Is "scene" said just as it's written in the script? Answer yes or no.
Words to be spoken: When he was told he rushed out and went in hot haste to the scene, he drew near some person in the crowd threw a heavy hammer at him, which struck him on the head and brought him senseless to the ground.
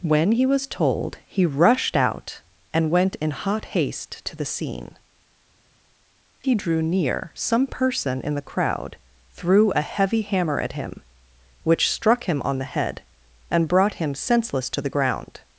yes